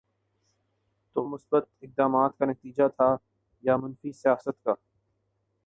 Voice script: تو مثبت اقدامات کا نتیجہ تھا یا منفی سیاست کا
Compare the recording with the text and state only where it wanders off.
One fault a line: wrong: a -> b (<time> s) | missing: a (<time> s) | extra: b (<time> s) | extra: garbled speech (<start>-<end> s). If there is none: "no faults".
no faults